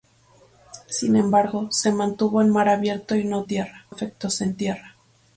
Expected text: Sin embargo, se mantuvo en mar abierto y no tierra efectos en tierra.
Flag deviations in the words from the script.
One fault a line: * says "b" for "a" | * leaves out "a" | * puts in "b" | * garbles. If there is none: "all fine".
all fine